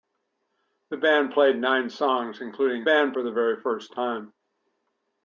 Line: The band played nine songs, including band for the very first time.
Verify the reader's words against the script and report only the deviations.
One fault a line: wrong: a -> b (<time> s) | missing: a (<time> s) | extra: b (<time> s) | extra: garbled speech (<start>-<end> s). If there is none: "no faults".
no faults